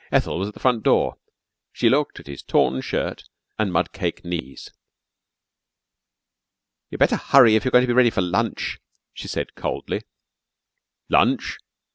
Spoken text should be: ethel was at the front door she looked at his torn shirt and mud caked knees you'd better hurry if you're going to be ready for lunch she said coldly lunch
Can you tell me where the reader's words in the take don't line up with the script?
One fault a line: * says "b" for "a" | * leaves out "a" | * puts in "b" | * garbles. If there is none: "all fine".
all fine